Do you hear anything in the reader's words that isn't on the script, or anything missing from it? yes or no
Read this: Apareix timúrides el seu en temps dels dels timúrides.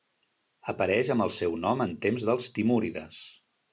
yes